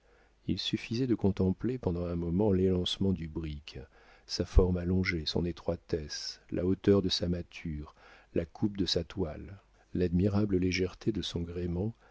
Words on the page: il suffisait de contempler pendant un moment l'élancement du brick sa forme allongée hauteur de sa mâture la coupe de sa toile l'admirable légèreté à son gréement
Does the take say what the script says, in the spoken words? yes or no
no